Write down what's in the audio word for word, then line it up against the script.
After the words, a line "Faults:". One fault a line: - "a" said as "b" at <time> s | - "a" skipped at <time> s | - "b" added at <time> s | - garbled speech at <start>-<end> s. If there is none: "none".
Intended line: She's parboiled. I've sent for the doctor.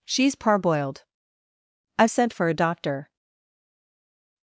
She's parboiled. I've sent for a doctor.
Faults:
- "the" said as "a" at 2.5 s